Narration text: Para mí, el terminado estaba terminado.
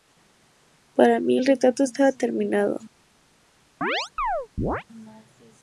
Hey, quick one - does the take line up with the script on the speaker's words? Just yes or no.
no